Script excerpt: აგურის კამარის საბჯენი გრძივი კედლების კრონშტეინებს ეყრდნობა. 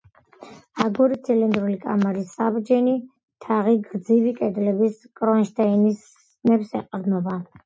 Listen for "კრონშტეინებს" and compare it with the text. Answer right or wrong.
right